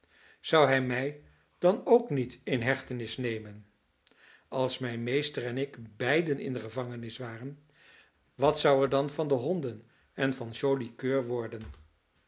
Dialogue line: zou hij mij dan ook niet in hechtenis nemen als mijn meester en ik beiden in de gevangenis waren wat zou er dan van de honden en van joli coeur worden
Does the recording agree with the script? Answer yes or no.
yes